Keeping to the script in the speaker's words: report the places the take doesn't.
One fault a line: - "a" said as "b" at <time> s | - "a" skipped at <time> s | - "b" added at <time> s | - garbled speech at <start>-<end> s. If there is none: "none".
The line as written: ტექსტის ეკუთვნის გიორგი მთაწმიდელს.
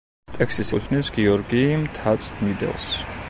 none